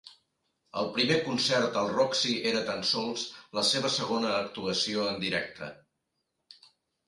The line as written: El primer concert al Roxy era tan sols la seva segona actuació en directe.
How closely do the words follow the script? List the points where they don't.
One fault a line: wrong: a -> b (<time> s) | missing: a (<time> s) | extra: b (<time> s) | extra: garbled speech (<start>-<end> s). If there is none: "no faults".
no faults